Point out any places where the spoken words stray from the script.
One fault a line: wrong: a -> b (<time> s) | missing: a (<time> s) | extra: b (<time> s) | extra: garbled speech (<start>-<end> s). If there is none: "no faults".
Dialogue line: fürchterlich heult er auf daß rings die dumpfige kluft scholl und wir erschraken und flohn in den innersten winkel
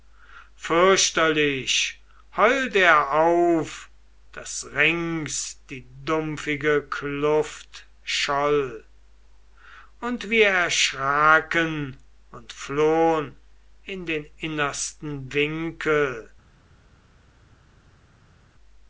no faults